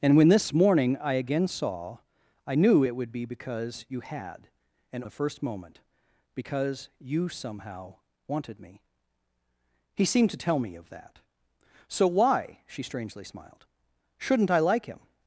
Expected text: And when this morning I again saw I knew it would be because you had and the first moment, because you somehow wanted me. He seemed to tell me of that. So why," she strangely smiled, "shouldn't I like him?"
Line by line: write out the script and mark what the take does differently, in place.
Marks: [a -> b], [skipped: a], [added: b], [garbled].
And when this morning I again saw I knew it would be because you had and the first moment, because you somehow wanted me. He seemed to tell me of that. So why," she strangely smiled, "shouldn't I like him?"